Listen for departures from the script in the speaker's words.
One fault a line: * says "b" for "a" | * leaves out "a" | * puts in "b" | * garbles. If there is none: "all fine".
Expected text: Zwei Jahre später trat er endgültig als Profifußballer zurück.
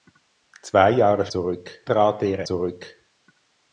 * says "zurück" for "später"
* leaves out "endgültig als Profifußballer"